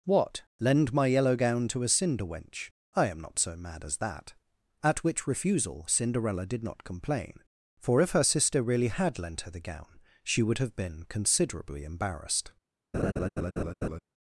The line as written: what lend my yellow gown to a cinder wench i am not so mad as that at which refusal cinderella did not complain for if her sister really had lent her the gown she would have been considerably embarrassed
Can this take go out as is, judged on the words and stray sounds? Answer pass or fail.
fail